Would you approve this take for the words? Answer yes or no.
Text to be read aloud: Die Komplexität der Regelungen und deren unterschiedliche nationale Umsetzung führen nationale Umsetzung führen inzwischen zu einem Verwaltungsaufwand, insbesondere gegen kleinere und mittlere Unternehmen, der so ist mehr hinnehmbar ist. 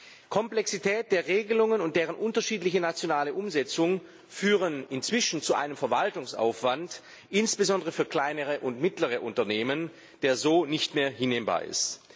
no